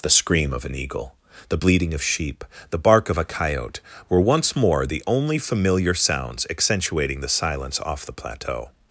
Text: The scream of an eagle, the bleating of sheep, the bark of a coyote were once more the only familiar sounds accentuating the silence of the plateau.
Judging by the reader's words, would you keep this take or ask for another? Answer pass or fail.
fail